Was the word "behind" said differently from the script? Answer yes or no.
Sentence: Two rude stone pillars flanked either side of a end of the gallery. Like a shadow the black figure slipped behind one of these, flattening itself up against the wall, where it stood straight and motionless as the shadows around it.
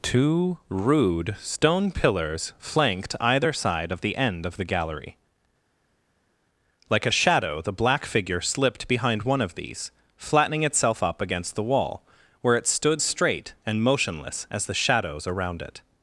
no